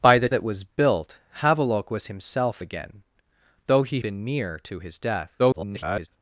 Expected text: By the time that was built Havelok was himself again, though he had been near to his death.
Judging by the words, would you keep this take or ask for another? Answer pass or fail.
fail